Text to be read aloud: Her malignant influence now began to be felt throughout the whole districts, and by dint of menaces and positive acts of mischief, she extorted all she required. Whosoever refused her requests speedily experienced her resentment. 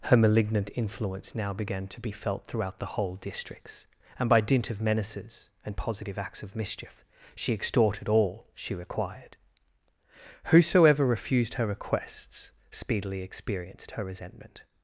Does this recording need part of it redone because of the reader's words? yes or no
no